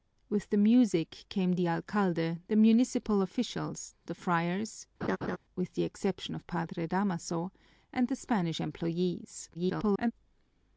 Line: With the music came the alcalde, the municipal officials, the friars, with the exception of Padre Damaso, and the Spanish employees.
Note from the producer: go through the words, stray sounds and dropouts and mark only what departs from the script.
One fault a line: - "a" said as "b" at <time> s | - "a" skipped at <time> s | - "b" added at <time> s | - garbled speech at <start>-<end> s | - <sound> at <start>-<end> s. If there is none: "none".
- laugh at 5.0-5.4 s
- garbled speech at 9.5-10.1 s